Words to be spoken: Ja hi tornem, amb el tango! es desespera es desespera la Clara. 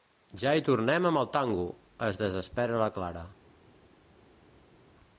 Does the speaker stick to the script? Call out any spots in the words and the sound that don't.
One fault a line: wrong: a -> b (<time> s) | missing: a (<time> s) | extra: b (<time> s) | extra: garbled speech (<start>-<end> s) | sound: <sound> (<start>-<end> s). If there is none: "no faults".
missing: es desespera (2.8 s)